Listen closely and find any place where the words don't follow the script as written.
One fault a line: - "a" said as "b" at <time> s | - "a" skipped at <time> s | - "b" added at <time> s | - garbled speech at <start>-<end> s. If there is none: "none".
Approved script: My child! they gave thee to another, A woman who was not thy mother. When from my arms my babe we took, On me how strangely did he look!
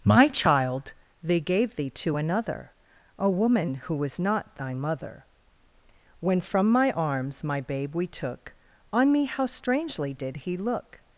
none